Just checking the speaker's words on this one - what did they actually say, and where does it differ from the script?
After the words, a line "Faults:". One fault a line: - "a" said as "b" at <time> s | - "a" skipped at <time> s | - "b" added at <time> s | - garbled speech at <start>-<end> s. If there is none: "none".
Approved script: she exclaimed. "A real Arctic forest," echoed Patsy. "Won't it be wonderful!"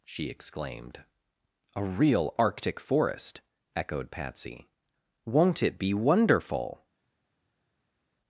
she exclaimed. "A real Arctic forest," echoed Patsy. "Won't it be wonderful!"
Faults:
none